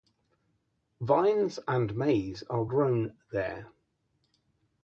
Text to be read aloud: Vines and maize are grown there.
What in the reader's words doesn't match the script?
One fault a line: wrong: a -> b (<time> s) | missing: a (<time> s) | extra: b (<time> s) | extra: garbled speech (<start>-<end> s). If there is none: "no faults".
no faults